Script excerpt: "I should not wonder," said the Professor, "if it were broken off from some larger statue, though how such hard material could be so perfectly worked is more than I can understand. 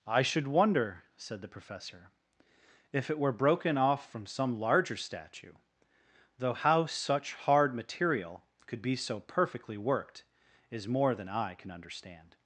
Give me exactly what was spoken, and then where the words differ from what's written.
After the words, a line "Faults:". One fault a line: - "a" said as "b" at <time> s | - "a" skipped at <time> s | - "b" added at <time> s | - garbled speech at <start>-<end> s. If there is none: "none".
"I should wonder," said the Professor, "if it were broken off from some larger statue, though how such hard material could be so perfectly worked is more than I can understand.
Faults:
- "not" skipped at 0.5 s